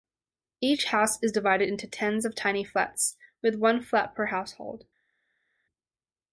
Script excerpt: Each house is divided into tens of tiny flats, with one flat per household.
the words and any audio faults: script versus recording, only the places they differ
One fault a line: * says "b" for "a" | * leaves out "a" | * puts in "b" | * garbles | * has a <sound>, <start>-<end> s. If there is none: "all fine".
all fine